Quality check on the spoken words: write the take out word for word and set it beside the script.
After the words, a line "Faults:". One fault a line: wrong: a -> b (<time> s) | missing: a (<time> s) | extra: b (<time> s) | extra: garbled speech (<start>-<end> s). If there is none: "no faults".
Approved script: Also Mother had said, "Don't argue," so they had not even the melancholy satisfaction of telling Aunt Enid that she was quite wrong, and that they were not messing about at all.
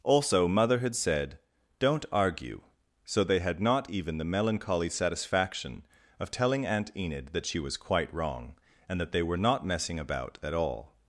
Also Mother had said, "Don't argue," so they had not even the melancholy satisfaction of telling Aunt Enid that she was quite wrong, and that they were not messing about at all.
Faults:
no faults